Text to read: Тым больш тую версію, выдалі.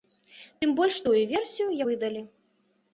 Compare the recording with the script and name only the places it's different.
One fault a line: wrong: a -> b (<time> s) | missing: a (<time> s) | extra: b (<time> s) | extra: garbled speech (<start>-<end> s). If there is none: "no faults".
no faults